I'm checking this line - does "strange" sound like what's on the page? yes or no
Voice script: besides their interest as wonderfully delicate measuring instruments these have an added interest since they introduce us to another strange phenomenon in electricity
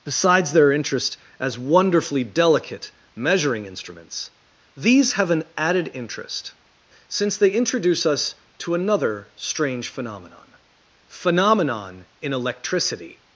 yes